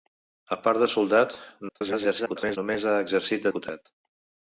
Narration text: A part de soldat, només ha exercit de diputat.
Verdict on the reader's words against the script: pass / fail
fail